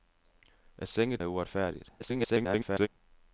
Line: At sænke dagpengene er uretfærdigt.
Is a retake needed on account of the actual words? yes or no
yes